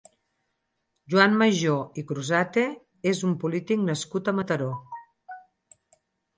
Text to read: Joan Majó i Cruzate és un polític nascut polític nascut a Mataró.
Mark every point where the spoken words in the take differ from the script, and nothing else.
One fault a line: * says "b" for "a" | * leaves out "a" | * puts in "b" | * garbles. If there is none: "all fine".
* leaves out "polític nascut"